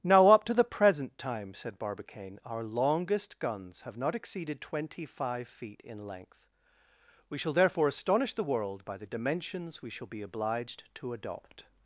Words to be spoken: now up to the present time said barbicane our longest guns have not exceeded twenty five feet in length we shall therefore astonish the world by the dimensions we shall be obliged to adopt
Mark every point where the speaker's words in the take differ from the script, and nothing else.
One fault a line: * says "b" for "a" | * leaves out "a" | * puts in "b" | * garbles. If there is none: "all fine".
all fine